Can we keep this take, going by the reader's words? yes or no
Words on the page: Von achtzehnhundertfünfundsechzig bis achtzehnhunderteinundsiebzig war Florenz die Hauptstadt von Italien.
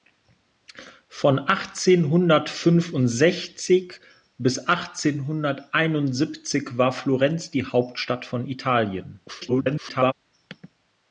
no